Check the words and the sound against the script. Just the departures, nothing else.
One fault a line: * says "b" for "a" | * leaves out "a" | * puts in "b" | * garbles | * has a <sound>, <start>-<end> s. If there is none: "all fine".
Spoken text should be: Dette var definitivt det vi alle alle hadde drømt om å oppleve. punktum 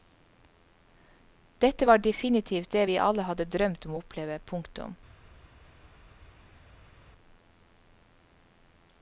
* leaves out "alle"